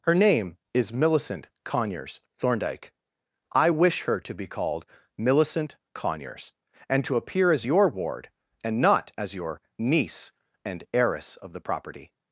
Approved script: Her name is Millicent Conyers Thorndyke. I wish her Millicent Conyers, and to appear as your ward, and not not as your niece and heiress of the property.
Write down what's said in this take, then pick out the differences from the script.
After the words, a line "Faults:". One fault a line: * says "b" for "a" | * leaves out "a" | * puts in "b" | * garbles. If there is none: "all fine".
Her name is Millicent Conyers Thorndyke. I wish her to be called Millicent Conyers, and to appear as your ward, and not as your niece and heiress of the property.
Faults:
* puts in "to be called"
* leaves out "not"